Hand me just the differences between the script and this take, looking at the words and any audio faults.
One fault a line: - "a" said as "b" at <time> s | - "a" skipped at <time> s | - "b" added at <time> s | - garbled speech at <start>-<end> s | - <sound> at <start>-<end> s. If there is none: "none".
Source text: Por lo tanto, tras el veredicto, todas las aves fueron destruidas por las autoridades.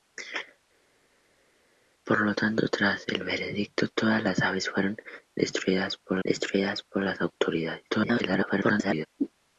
- "destruidas por" added at 6.2 s
- garbled speech at 7.9-9.1 s